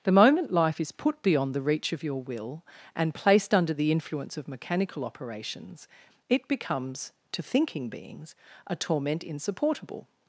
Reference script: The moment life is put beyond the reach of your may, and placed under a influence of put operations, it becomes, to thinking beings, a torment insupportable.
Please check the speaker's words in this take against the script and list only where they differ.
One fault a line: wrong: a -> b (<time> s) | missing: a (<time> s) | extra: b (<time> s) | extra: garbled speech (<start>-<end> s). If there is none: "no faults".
wrong: may -> will (2.2 s)
wrong: a -> the (3.7 s)
wrong: put -> mechanical (4.5 s)